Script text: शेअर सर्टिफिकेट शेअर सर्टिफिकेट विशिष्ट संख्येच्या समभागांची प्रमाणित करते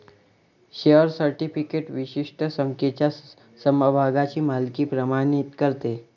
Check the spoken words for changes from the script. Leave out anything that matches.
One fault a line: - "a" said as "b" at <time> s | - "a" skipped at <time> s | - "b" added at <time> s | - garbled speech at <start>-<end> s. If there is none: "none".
- "शेअर सर्टिफिकेट" skipped at 1.9 s
- "मालकी" added at 4.4 s